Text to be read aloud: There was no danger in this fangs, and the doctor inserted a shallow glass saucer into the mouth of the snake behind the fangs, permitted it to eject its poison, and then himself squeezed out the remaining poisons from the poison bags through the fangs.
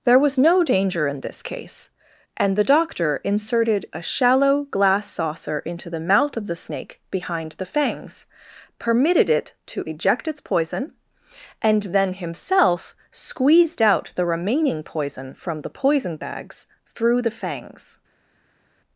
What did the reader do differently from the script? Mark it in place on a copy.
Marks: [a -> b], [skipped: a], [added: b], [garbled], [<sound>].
There was no danger in this [fangs, -> case] and the doctor inserted a shallow glass saucer into the mouth of the snake behind the fangs, permitted it to eject its poison, and then himself squeezed out the remaining [poisons -> poison] from the poison bags through the fangs.